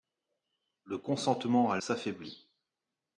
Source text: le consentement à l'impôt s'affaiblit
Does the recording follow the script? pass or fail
fail